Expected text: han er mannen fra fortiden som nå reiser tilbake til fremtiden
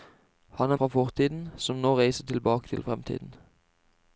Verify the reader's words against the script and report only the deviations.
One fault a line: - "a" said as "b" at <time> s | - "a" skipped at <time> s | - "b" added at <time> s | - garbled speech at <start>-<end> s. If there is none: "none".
- "mannen" skipped at 0.8 s